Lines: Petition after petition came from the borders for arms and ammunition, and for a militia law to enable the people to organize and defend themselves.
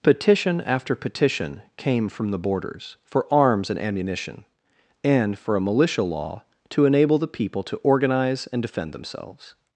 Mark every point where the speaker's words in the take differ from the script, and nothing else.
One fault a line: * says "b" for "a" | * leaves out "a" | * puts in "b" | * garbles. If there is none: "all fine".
all fine